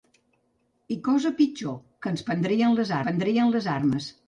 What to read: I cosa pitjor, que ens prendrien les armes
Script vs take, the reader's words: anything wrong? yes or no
yes